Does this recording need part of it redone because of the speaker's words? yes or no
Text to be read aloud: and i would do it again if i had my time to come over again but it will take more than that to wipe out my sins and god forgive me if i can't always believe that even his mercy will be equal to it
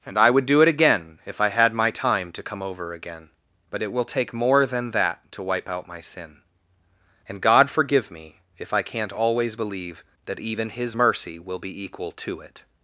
yes